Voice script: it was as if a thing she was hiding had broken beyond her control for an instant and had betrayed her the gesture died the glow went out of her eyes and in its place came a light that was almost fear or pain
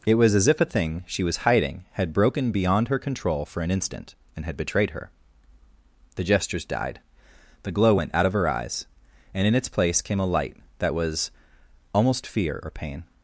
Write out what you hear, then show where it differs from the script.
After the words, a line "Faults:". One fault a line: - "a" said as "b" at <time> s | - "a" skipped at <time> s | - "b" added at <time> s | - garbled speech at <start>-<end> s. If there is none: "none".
it was as if a thing she was hiding had broken beyond her control for an instant and had betrayed her the gestures died the glow went out of her eyes and in its place came a light that was almost fear or pain
Faults:
- "gesture" said as "gestures" at 6.2 s